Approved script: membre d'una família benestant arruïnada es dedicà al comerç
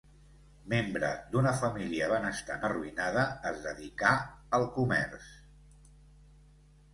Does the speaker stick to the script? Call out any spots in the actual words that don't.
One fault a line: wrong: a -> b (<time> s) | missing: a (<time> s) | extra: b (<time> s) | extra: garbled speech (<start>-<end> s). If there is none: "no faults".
no faults